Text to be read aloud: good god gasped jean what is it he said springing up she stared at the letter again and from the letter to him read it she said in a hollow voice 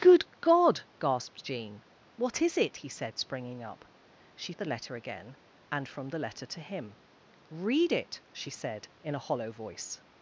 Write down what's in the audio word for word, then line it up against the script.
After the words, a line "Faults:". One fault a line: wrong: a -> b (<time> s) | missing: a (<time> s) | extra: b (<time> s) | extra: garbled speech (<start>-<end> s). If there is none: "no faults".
good god gasped jean what is it he said springing up she at the letter again and from the letter to him read it she said in a hollow voice
Faults:
missing: stared (4.5 s)